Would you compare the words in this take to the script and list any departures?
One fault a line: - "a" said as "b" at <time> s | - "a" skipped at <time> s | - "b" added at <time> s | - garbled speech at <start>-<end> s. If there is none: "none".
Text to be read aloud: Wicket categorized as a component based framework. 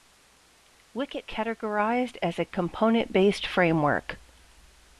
none